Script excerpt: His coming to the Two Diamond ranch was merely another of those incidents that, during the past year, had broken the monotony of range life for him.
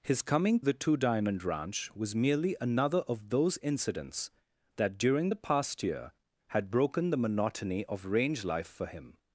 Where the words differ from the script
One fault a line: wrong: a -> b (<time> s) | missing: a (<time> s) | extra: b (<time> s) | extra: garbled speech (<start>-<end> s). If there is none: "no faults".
missing: to (0.6 s)